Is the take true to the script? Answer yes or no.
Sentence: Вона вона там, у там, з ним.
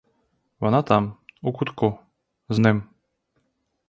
no